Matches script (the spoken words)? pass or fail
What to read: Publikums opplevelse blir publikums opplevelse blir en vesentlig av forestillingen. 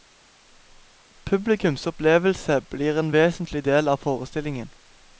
fail